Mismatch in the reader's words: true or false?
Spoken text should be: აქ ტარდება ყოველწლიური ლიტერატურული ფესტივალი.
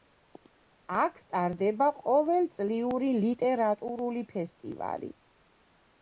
false